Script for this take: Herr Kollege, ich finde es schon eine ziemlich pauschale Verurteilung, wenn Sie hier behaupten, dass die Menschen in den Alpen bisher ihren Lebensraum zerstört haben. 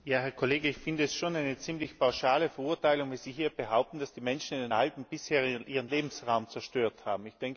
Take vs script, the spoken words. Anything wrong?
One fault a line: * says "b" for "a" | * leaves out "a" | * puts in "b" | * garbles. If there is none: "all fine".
all fine